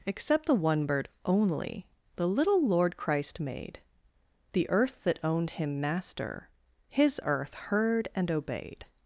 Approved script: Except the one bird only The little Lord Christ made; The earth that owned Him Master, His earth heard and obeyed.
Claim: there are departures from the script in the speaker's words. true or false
false